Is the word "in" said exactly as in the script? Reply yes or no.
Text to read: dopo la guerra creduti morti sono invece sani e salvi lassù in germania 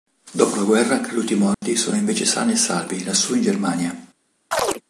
yes